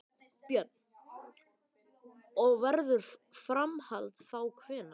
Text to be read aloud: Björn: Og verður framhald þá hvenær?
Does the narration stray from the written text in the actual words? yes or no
no